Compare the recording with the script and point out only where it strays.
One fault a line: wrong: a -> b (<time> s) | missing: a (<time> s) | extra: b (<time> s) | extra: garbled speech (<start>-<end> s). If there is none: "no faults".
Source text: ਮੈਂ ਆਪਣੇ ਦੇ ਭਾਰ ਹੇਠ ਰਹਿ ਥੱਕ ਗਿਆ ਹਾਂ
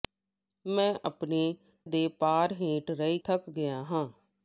no faults